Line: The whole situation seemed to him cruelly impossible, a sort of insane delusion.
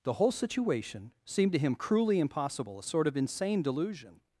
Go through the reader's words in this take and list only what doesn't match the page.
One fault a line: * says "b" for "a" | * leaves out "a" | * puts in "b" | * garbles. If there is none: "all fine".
all fine